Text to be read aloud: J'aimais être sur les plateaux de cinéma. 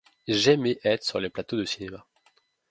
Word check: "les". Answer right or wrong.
right